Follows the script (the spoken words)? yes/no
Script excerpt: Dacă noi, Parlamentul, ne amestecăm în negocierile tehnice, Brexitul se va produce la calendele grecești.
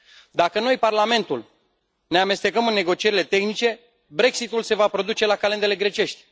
yes